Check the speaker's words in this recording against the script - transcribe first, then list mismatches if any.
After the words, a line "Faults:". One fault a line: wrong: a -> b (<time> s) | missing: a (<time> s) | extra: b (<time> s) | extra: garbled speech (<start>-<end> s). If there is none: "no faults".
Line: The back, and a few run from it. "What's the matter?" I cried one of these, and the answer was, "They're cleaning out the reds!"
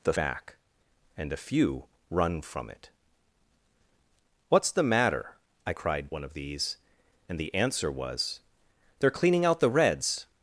The back, and a few run from it. "What's the matter?" I cried one of these, and the answer was, "They're cleaning out the reds!"
Faults:
no faults